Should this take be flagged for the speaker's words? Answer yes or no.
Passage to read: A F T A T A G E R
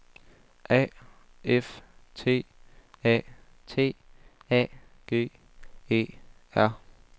no